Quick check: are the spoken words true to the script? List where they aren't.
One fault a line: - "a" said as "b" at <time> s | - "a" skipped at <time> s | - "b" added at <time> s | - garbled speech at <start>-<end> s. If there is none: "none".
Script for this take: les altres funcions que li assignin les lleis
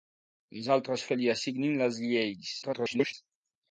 - "funcions" skipped at 1.0 s
- garbled speech at 2.6-3.1 s